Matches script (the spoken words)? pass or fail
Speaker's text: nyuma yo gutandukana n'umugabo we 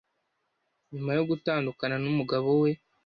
pass